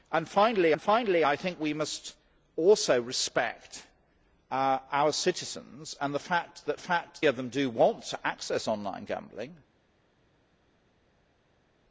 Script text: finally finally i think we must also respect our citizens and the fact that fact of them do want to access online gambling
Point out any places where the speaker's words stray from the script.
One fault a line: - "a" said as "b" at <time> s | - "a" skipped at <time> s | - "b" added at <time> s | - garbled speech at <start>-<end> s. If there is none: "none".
none